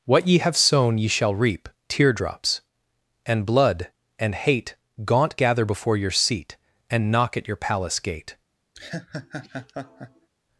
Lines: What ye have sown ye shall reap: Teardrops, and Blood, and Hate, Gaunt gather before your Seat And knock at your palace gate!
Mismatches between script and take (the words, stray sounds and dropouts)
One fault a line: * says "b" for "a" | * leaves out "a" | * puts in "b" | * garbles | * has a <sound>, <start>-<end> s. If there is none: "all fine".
* has a laugh, 8.7-10.3 s